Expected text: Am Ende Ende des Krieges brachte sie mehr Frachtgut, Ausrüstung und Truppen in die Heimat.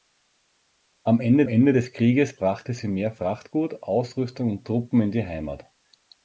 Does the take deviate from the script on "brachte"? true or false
false